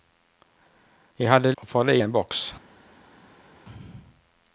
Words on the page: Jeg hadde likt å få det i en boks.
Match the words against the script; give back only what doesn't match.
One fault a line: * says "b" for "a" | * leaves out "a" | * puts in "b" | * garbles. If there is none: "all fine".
* leaves out "likt"